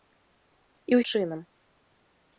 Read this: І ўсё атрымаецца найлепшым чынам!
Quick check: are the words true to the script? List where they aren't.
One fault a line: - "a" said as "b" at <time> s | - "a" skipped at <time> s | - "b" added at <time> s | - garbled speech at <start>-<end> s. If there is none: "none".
- "ўсё атрымаецца найлепшым" skipped at 1.0 s